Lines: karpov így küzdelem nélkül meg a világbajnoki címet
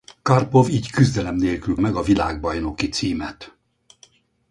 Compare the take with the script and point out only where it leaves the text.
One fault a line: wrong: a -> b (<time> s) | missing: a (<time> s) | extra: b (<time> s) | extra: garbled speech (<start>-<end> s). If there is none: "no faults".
no faults